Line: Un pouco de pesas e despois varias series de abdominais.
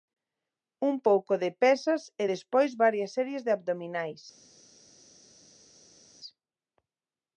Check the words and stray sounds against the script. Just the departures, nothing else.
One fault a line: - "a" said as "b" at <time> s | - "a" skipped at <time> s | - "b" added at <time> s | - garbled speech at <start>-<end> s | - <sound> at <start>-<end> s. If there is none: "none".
none